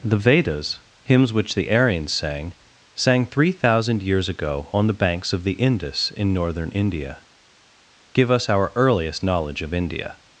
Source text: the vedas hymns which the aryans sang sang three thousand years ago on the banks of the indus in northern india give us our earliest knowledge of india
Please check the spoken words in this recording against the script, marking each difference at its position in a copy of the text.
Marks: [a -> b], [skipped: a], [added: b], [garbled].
the vedas hymns which the aryans sang sang three thousand years ago on the banks of the indus in northern india give us our earliest knowledge of india